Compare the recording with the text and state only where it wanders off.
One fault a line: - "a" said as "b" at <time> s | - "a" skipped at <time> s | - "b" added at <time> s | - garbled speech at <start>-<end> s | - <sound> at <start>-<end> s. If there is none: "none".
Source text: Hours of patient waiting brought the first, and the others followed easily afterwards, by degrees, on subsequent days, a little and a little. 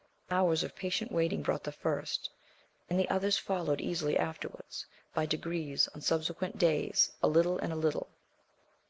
none